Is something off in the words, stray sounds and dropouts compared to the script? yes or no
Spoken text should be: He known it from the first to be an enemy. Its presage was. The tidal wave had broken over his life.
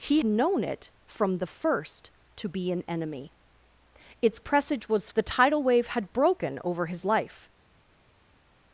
no